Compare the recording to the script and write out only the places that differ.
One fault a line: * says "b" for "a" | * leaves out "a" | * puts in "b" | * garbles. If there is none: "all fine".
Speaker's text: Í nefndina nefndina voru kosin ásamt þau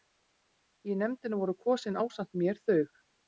* leaves out "nefndina"
* puts in "mér"